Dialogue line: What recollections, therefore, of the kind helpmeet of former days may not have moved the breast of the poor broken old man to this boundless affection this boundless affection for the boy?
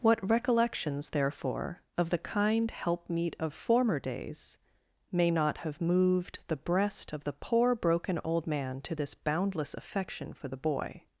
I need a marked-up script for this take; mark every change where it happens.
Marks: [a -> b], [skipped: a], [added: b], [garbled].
What recollections, therefore, of the kind helpmeet of former days may not have moved the breast of the poor broken old man to this boundless affection [skipped: this boundless affection] for the boy?